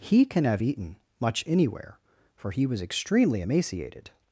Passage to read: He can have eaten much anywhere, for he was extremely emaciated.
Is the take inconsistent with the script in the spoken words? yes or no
no